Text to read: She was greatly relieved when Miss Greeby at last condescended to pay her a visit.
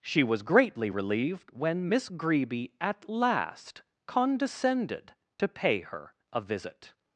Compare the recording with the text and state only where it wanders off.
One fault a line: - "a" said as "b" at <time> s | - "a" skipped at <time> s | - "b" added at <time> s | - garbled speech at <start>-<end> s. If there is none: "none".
none